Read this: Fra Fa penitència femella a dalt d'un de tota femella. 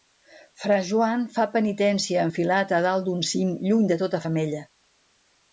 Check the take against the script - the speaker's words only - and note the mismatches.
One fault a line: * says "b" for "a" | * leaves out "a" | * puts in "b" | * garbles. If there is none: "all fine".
* puts in "Joan"
* says "enfilat" for "femella"
* puts in "cim lluny"